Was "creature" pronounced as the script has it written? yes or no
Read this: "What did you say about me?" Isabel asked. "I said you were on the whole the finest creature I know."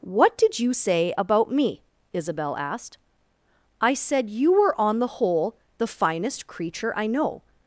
yes